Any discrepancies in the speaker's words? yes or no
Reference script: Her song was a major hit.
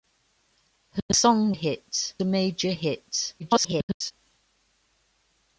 yes